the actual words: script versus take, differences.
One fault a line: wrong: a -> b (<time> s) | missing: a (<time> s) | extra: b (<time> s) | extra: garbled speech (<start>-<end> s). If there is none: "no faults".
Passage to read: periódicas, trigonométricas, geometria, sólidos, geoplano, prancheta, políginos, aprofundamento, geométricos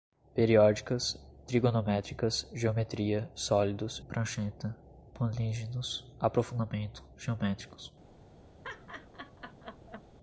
missing: geoplano (4.0 s)